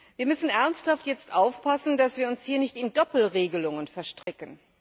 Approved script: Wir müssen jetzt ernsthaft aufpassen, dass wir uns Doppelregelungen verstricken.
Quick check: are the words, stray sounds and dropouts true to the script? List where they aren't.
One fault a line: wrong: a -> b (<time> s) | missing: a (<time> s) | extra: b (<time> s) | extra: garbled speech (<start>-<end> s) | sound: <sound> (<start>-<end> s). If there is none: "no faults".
extra: hier nicht in (2.4 s)
sound: dropout (4.2-4.3 s)